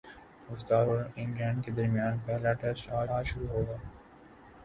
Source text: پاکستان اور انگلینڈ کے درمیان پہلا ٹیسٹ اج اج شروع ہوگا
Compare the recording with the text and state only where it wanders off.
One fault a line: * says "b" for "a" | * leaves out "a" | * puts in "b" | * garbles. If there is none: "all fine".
all fine